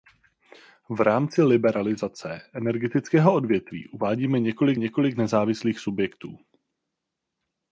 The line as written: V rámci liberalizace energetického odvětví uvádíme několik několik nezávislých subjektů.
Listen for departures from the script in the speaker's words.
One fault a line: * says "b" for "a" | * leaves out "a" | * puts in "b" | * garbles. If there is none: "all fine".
all fine